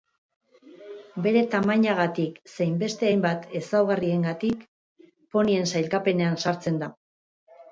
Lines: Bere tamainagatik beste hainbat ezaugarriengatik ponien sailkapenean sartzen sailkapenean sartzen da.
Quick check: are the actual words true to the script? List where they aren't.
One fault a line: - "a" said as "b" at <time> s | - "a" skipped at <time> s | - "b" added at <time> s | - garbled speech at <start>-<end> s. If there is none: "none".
- "zein" added at 2.5 s
- "sailkapenean sartzen" skipped at 6.8 s